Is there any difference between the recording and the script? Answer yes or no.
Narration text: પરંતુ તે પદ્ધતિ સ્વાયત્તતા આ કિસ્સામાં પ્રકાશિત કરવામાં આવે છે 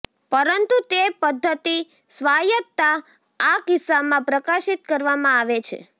no